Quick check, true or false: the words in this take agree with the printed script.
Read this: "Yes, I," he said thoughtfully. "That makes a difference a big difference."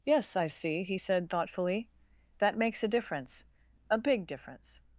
false